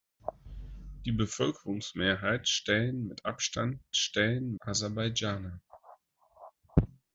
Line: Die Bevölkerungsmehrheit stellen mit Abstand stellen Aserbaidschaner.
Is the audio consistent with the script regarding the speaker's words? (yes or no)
yes